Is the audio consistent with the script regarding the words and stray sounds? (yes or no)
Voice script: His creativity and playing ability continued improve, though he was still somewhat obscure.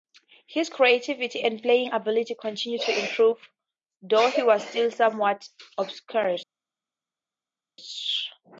no